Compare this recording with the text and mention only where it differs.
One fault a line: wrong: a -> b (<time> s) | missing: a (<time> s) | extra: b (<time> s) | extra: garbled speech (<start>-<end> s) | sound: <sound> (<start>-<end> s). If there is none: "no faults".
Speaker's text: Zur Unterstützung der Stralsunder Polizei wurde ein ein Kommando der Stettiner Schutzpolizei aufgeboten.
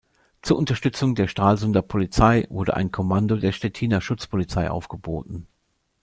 missing: ein (2.9 s)